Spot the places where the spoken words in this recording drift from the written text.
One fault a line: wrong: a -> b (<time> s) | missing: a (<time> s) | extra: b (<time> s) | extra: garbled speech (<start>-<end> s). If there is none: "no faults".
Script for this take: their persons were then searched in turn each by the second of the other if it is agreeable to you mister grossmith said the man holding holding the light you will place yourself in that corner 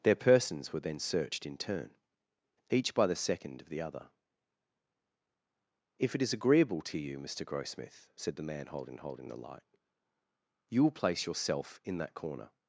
no faults